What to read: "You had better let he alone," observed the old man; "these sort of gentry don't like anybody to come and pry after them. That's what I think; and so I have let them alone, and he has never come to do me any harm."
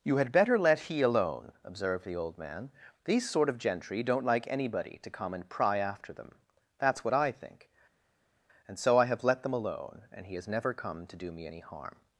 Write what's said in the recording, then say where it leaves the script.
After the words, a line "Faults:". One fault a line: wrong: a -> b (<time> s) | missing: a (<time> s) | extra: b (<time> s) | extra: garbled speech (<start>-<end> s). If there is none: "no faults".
"You had better let he alone," observed the old man; "these sort of gentry don't like anybody to come and pry after them. That's what I think; and so I have let them alone, and he has never come to do me any harm."
Faults:
no faults